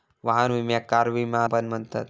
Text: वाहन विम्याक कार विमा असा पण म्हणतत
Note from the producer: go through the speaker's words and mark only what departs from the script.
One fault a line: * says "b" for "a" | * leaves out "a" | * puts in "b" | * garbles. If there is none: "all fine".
* leaves out "असा"